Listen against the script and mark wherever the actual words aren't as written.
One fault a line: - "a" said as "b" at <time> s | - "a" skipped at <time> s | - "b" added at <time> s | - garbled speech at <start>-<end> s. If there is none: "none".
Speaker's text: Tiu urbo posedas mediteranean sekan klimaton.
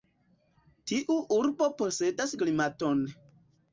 - "mediteranean sekan" skipped at 2.3 s